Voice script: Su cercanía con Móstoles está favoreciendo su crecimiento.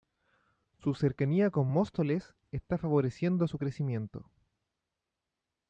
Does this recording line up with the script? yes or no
yes